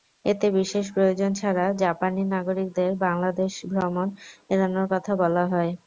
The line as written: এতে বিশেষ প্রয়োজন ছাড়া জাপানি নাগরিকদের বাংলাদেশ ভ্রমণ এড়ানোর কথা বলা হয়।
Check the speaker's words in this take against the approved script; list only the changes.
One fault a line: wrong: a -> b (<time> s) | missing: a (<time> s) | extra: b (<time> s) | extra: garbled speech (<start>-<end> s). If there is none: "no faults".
no faults